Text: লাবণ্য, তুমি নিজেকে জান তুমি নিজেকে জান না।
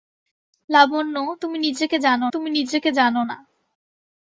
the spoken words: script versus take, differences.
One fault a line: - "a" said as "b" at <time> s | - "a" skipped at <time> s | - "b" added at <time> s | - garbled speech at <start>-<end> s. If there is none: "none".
none